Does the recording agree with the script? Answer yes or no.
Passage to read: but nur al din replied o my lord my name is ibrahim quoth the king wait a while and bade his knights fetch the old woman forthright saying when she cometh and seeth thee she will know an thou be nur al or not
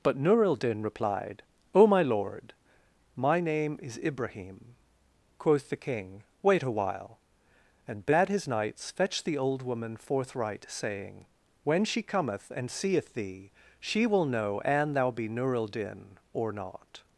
no